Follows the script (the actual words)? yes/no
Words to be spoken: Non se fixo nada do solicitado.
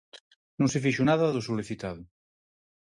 yes